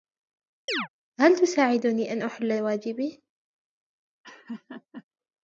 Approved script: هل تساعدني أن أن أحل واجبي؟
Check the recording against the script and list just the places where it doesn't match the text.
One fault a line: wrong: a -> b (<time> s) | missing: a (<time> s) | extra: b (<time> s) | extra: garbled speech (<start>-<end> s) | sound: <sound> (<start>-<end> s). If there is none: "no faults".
sound: chirp (0.7-0.9 s)
missing: أن (2.2 s)
sound: laugh (4.2-5.0 s)